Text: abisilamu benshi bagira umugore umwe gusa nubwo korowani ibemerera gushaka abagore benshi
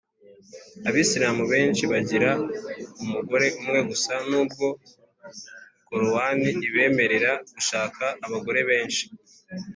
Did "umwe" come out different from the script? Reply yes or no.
no